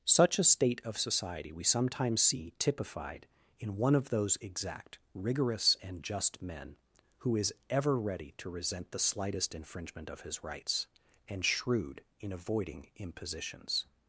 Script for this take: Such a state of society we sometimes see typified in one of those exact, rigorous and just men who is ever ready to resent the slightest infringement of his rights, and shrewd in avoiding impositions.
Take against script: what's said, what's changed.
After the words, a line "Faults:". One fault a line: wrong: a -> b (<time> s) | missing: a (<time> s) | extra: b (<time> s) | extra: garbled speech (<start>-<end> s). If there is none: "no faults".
Such a state of society we sometimes see typified in one of those exact, rigorous and just men who is ever ready to resent the slightest infringement of his rights, and shrewd in avoiding impositions.
Faults:
no faults